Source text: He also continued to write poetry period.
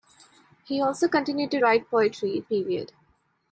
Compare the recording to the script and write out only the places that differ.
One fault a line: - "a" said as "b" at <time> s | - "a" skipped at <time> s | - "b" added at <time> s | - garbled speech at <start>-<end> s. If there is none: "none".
none